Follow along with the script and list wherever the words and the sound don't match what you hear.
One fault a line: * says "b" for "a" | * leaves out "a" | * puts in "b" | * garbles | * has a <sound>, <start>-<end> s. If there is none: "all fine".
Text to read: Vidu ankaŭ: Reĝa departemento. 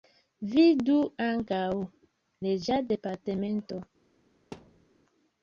* has a thud, 4.5-4.9 s